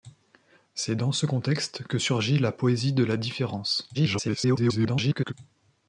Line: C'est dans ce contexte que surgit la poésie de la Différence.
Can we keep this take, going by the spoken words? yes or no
no